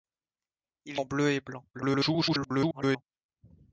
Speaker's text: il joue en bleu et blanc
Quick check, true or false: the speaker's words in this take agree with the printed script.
false